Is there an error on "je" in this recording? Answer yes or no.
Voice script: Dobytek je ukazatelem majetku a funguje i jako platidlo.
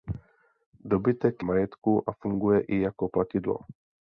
yes